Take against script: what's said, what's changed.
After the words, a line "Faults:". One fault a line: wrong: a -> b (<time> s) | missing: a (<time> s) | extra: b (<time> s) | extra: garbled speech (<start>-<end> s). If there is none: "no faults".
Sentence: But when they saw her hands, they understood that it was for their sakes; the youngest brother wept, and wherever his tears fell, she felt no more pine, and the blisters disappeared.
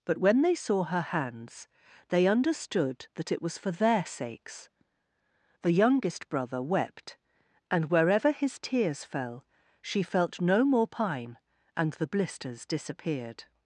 But when they saw her hands, they understood that it was for their sakes; the youngest brother wept, and wherever his tears fell, she felt no more pine, and the blisters disappeared.
Faults:
no faults